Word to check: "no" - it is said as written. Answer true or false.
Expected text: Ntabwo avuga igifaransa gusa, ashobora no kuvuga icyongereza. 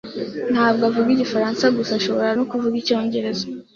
true